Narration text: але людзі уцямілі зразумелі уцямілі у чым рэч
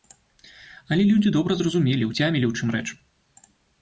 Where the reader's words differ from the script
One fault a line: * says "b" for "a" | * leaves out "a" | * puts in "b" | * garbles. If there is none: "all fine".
* says "добра" for "уцямілі"